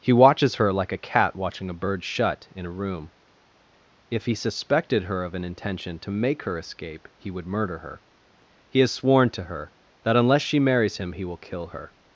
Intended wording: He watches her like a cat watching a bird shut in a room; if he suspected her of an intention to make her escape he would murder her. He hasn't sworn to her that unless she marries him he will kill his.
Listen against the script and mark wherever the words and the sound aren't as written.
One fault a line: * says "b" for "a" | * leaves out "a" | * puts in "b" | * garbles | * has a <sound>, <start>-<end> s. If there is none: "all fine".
* says "has" for "hasn't"
* says "her" for "his"